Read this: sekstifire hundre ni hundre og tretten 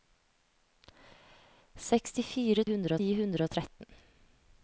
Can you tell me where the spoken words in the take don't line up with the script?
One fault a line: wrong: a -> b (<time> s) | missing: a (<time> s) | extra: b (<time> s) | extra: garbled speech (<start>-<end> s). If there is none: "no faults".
no faults